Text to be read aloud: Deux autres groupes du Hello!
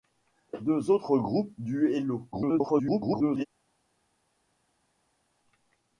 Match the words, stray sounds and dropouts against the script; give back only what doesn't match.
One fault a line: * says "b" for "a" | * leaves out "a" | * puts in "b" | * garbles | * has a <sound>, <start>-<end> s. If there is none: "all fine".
* garbles